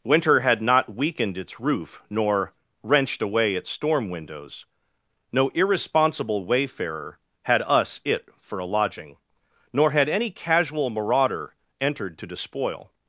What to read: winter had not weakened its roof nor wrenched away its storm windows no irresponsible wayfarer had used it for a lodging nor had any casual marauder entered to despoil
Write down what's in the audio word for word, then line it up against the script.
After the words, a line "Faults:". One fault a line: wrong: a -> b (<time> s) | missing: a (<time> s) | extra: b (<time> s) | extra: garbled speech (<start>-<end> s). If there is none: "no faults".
winter had not weakened its roof nor wrenched away its storm windows no irresponsible wayfarer had us it for a lodging nor had any casual marauder entered to despoil
Faults:
wrong: used -> us (7.6 s)